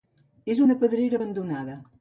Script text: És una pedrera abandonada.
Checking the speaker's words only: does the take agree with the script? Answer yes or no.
yes